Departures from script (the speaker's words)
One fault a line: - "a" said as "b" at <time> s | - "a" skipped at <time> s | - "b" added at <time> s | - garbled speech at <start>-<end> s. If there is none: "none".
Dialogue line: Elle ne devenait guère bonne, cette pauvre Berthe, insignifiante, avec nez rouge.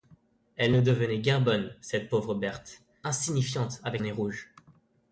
none